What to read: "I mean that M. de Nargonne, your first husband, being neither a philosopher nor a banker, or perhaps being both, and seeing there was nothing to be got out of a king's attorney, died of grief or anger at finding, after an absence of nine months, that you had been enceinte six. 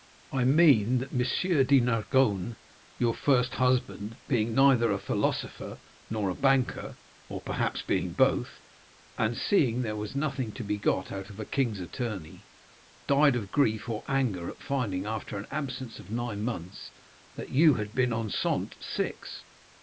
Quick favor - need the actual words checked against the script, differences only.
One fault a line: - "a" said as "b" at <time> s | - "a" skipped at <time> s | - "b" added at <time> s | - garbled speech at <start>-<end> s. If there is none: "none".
none